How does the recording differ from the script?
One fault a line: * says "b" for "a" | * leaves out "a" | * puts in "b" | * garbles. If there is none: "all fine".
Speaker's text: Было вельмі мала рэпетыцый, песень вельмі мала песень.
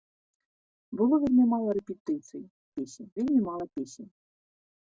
all fine